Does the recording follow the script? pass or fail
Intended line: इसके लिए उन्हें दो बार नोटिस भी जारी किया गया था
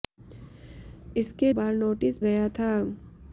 fail